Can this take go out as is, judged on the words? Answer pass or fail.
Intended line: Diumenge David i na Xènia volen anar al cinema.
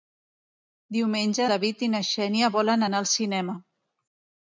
pass